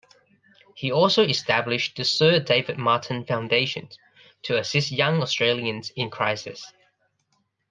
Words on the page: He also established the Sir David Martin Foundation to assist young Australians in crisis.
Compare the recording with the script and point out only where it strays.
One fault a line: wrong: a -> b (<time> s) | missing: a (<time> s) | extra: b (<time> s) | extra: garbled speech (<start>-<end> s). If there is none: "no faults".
no faults